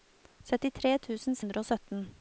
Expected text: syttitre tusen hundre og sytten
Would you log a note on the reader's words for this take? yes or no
no